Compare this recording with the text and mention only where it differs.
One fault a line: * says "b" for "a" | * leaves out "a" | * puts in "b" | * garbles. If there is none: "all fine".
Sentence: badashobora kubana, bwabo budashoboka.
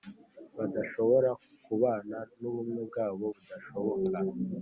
* puts in "n'ubumwe"